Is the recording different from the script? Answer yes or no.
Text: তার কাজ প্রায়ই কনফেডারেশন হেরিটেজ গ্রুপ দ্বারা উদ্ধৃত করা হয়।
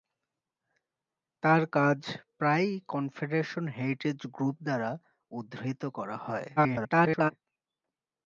yes